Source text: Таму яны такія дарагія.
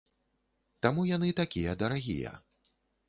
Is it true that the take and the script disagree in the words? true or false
false